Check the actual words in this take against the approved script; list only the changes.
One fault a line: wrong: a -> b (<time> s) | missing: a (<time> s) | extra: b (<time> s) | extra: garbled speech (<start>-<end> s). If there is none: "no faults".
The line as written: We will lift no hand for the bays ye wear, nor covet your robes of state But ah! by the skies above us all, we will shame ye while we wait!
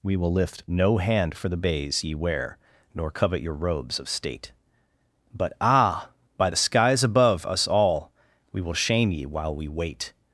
no faults